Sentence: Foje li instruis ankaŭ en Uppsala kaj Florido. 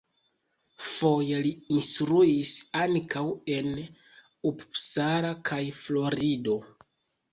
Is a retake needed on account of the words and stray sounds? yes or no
no